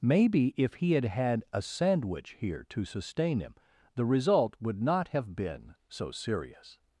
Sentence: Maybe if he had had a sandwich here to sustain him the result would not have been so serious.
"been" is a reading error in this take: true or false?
false